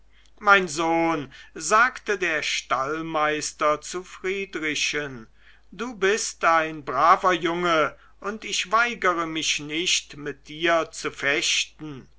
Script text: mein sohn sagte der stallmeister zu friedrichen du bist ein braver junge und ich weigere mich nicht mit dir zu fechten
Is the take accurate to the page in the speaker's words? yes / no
yes